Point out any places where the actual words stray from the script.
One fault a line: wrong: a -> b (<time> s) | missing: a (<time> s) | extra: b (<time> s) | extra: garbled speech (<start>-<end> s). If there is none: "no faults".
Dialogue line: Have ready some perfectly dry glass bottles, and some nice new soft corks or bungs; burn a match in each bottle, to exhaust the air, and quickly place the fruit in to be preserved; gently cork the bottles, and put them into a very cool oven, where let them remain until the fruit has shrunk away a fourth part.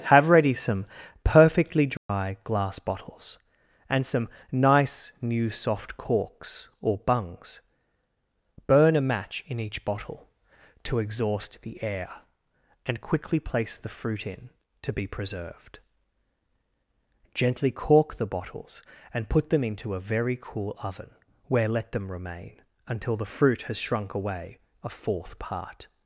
no faults